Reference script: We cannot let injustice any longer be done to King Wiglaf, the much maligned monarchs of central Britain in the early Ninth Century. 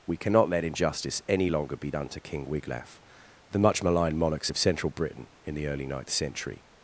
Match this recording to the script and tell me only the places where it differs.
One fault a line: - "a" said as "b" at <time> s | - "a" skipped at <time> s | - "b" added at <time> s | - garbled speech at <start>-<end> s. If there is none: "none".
none